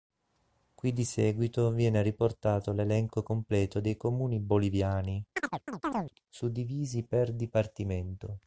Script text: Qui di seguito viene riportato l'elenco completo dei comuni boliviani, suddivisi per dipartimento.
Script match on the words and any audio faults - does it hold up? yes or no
no